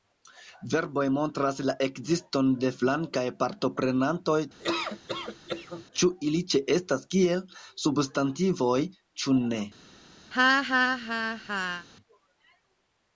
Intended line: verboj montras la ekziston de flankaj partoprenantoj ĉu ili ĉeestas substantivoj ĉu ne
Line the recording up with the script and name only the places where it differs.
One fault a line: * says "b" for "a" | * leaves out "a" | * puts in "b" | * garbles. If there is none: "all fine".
* puts in "kiel"